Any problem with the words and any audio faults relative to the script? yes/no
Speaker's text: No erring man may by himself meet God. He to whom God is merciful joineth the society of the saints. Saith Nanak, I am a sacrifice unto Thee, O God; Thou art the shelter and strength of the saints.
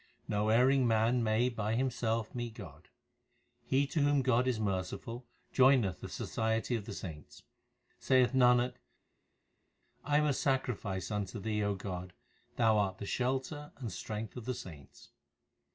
no